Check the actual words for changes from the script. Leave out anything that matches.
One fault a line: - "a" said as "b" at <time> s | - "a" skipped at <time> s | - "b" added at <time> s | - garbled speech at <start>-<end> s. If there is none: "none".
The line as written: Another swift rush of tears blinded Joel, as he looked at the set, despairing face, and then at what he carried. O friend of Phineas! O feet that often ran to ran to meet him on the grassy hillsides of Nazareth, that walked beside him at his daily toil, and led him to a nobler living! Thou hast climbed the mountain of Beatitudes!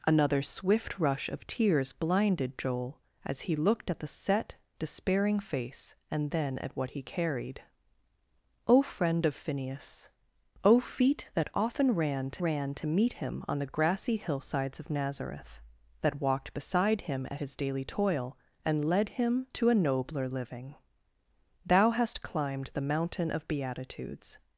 none